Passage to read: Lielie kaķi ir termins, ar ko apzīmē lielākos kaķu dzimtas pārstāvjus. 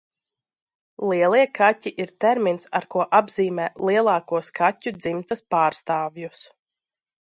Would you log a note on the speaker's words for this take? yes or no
no